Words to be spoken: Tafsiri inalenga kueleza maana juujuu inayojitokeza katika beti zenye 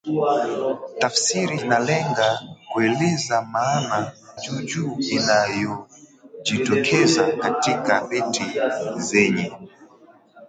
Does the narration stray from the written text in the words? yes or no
no